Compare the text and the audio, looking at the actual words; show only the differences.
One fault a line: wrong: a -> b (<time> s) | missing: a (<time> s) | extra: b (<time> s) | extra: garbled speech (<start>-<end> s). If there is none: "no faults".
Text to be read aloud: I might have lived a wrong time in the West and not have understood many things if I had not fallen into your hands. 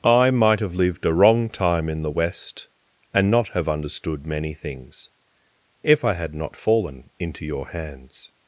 no faults